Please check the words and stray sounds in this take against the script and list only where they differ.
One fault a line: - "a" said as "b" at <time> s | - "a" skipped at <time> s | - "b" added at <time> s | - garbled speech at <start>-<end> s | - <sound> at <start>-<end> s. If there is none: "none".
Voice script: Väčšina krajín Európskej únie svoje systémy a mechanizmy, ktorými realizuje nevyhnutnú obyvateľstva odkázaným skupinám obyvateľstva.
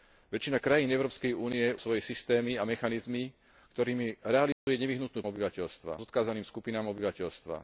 - dropout at 4.5-4.7 s